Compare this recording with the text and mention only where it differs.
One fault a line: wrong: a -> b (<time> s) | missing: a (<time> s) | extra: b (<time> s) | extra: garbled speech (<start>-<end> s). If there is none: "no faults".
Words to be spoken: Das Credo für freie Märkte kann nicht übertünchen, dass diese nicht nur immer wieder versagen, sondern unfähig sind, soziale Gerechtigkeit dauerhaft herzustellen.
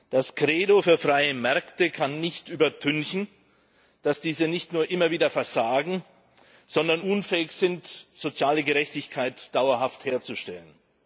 no faults